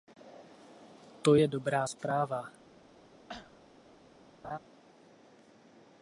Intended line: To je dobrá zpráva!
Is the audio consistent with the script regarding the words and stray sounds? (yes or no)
no